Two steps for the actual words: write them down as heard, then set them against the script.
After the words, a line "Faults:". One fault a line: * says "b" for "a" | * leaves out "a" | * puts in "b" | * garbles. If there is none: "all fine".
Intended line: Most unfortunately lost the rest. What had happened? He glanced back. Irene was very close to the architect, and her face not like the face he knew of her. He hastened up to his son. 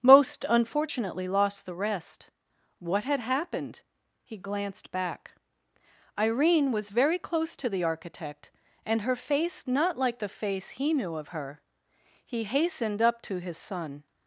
Most unfortunately lost the rest. What had happened? He glanced back. Irene was very close to the architect, and her face not like the face he knew of her. He hastened up to his son.
Faults:
all fine